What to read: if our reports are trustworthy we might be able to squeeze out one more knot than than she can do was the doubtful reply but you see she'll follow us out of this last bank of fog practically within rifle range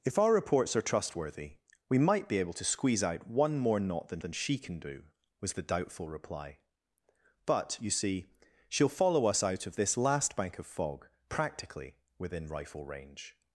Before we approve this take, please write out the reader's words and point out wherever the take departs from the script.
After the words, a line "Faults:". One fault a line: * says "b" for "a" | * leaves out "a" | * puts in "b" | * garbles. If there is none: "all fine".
if our reports are trustworthy we might be able to squeeze out one more knot than than she can do was the doubtful reply but you see she'll follow us out of this last bank of fog practically within rifle range
Faults:
all fine